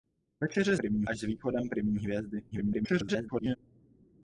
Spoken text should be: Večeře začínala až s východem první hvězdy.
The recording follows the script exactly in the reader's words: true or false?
false